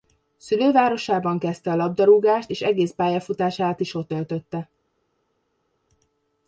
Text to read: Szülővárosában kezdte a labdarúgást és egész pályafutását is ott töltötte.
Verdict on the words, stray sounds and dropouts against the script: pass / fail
pass